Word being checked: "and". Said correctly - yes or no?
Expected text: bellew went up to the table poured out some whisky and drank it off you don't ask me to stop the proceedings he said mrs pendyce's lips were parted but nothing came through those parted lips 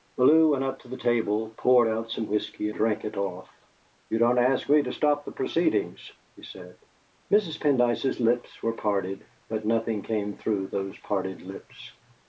no